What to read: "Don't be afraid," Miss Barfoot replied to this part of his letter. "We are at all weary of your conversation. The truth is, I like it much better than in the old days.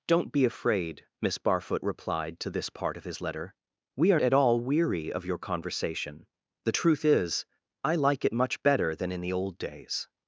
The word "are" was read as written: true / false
true